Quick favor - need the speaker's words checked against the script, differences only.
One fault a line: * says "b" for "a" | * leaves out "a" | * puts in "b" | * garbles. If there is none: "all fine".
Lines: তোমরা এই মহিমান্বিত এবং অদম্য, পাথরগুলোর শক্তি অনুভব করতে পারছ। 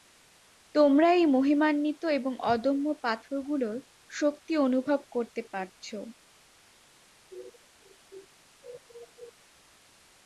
all fine